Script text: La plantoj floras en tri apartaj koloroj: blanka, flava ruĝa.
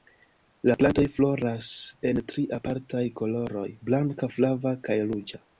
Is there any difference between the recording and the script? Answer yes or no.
yes